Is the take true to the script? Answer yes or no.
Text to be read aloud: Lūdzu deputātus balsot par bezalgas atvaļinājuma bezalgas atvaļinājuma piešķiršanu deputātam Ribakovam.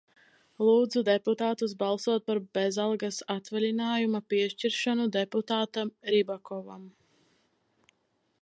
no